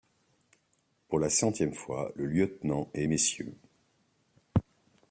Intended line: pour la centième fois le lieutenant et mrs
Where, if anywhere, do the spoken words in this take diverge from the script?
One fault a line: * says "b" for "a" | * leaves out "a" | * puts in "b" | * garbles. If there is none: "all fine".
all fine